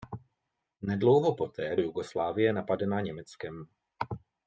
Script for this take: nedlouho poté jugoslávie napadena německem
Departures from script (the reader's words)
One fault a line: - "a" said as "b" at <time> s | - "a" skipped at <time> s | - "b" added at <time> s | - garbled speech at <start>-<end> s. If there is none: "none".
none